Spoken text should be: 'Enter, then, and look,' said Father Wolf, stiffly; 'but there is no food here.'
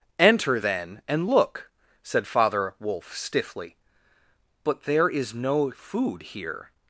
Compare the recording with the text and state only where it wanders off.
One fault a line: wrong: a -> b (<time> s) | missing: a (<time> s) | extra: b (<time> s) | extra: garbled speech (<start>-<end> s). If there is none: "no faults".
no faults